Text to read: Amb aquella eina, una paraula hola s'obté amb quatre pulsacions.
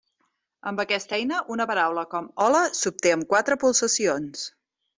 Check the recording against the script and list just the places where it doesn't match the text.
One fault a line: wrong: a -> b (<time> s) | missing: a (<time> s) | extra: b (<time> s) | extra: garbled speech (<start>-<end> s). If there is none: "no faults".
wrong: aquella -> aquesta (0.8 s)
extra: com (2.1 s)